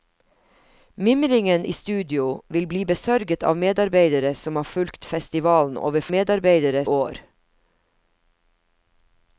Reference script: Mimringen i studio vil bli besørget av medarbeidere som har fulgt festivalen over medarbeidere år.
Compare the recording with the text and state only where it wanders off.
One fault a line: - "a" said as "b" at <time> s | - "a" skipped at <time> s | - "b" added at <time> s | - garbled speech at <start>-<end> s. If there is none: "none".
none